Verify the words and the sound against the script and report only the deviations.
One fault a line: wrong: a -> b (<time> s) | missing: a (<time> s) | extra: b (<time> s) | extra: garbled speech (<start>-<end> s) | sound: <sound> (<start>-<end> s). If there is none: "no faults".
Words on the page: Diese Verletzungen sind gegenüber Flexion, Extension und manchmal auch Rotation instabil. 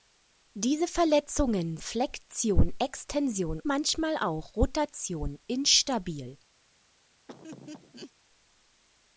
missing: sind gegenüber (1.8 s)
missing: und (3.6 s)
sound: laugh (7.3-8.1 s)